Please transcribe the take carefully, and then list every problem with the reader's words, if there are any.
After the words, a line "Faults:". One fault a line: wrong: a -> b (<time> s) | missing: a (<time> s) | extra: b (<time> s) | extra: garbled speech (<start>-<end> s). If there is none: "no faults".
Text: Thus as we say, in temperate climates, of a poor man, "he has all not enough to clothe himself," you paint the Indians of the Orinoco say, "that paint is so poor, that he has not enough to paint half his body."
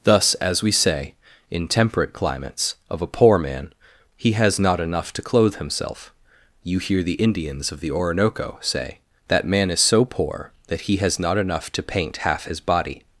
Thus as we say, in temperate climates, of a poor man, "he has not enough to clothe himself," you hear the Indians of the Orinoco say, "that man is so poor, that he has not enough to paint half his body."
Faults:
missing: all (4.6 s)
wrong: paint -> hear (6.8 s)
wrong: paint -> man (9.4 s)